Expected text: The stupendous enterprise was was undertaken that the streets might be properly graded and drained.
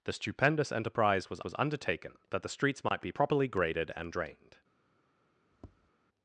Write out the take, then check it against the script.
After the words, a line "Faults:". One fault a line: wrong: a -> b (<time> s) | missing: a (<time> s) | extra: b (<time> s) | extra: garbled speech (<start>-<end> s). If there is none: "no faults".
The stupendous enterprise was was undertaken that the streets might be properly graded and drained.
Faults:
no faults